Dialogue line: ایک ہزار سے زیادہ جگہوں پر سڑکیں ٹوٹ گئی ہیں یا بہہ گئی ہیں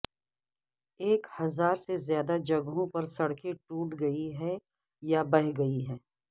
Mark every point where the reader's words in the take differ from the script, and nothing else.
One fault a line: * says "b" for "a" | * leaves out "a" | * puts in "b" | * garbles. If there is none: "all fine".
all fine